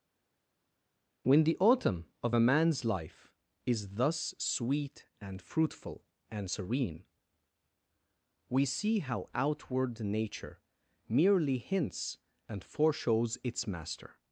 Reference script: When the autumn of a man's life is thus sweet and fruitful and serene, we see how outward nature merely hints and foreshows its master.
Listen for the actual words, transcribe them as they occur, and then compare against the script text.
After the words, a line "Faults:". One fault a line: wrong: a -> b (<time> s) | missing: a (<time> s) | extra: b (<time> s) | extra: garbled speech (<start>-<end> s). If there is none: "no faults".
When the autumn of a man's life is thus sweet and fruitful and serene, we see how outward nature merely hints and foreshows its master.
Faults:
no faults